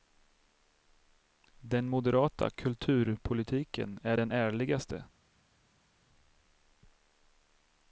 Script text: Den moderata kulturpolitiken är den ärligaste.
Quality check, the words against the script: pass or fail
pass